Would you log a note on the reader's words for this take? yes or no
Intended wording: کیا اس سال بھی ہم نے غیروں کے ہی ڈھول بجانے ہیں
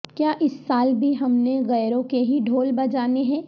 no